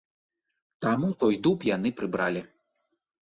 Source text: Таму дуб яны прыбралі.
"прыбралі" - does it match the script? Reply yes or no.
yes